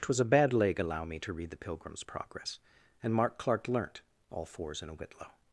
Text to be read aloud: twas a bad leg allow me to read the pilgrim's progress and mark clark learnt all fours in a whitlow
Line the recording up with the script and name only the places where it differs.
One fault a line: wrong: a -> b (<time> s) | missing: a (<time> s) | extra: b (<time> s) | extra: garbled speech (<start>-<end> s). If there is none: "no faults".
no faults